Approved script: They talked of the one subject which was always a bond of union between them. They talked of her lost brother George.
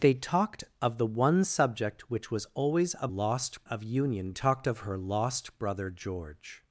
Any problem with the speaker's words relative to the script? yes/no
yes